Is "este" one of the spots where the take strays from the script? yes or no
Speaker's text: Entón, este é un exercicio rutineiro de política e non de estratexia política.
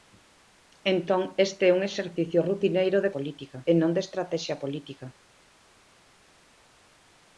no